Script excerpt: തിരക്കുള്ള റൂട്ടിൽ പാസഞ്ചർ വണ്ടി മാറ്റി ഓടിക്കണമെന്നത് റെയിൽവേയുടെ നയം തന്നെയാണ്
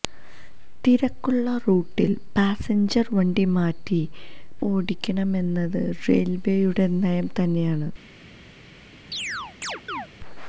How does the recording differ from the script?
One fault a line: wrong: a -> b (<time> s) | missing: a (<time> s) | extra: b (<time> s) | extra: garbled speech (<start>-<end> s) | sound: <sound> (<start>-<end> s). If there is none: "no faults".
sound: chirp (9.1-10.1 s)